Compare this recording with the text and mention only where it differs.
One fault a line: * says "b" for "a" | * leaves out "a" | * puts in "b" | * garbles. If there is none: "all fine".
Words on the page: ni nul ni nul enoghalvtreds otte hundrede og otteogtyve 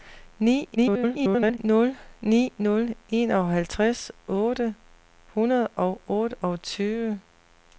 * garbles